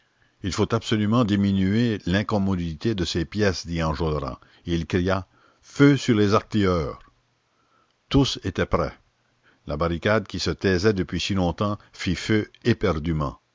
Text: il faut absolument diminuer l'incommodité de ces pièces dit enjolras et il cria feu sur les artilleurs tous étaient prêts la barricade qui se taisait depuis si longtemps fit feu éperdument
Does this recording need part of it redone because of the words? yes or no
no